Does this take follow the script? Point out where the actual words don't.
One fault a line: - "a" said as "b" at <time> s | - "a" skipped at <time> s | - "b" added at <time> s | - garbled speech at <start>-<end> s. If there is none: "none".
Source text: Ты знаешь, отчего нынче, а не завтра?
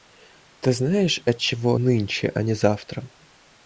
none